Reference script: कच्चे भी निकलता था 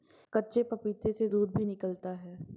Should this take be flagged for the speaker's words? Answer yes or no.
yes